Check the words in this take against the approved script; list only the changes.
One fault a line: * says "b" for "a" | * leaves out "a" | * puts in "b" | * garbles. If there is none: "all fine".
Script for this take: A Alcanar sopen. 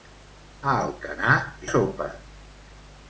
all fine